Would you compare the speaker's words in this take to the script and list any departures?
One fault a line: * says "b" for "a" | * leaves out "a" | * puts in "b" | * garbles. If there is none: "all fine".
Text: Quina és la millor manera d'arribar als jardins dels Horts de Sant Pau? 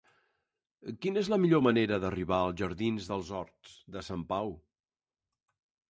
all fine